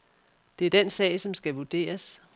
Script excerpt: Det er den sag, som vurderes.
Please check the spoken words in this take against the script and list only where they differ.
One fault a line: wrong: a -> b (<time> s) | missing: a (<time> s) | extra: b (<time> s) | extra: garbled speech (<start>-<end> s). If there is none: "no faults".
extra: skal (1.3 s)